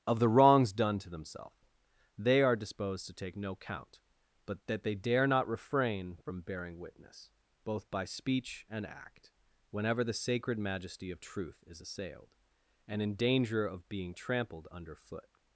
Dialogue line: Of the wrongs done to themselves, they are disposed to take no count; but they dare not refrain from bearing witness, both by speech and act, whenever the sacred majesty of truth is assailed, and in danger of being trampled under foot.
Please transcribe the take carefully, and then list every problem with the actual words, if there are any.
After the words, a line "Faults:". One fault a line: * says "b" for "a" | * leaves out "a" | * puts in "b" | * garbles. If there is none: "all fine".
Of the wrongs done to themselves, they are disposed to take no count; but that they dare not refrain from bearing witness, both by speech and act, whenever the sacred majesty of truth is assailed, and in danger of being trampled under foot.
Faults:
* puts in "that"